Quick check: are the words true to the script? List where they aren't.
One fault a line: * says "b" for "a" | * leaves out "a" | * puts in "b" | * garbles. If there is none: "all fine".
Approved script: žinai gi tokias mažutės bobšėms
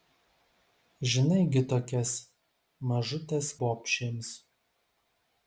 all fine